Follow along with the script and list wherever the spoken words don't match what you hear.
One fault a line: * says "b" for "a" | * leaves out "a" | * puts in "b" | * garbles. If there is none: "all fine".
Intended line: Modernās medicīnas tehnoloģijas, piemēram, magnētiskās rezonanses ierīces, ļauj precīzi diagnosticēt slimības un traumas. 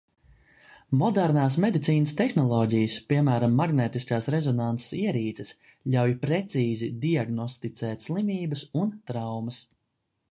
all fine